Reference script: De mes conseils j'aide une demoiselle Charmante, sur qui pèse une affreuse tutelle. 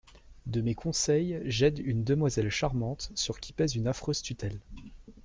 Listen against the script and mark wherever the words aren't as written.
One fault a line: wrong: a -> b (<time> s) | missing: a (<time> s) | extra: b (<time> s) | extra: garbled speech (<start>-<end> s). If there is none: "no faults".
no faults